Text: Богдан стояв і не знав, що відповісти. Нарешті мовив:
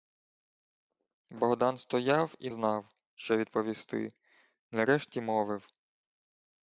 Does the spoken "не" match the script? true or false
false